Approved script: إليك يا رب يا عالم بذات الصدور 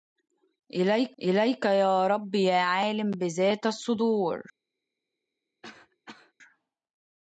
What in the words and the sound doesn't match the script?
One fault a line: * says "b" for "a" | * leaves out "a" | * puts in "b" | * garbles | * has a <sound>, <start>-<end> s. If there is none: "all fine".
* puts in "إليك"
* has a cough, 5.6-6.3 s